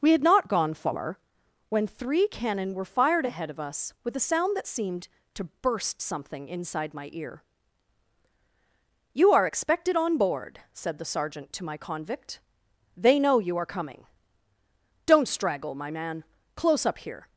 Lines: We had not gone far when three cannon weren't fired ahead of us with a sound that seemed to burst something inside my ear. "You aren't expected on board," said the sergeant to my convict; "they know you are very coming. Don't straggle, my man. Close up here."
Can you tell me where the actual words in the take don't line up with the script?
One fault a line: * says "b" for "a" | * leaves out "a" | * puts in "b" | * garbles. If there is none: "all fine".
* says "were" for "weren't"
* says "are" for "aren't"
* leaves out "very"